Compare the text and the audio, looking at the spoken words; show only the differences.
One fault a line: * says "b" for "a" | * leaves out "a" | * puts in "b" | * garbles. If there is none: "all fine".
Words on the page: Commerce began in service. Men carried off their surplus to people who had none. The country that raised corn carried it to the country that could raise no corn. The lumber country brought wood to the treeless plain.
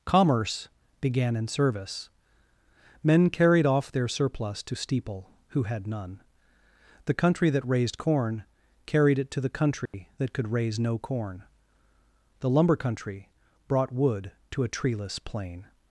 * says "steeple" for "people"
* says "a" for "the"